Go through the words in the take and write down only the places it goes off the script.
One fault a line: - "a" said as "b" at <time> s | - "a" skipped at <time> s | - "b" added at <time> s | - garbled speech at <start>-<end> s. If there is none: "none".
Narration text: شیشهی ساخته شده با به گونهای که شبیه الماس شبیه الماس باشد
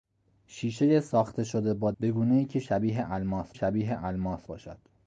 none